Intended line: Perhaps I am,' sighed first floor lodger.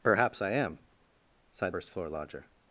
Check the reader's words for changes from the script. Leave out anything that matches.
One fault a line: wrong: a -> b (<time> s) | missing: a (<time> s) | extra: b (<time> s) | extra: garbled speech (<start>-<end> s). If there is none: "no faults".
no faults